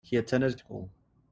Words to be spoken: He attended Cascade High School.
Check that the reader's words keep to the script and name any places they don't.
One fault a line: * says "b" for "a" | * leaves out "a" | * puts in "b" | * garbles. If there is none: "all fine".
* leaves out "Cascade High"